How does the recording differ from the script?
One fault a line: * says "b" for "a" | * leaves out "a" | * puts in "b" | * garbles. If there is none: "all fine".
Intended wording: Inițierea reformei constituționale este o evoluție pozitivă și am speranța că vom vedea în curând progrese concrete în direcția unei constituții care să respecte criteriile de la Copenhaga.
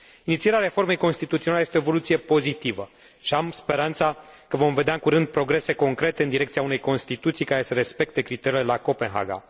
all fine